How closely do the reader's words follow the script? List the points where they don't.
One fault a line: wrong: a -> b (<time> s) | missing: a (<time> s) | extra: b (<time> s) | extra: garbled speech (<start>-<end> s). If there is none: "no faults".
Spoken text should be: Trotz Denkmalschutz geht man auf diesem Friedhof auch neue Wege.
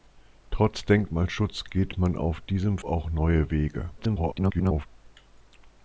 missing: Friedhof (2.8 s)
extra: garbled speech (4.0-4.9 s)